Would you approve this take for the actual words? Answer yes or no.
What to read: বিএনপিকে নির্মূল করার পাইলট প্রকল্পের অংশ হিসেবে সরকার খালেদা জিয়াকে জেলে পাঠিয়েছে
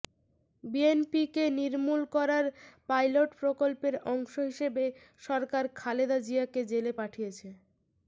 yes